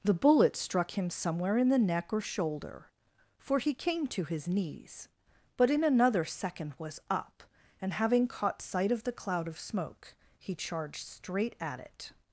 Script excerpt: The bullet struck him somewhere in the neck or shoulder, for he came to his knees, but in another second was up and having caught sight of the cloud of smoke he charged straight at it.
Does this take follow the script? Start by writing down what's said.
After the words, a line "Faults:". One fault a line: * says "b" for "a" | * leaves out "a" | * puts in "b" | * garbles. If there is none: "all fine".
The bullet struck him somewhere in the neck or shoulder, for he came to his knees, but in another second was up and having caught sight of the cloud of smoke he charged straight at it.
Faults:
all fine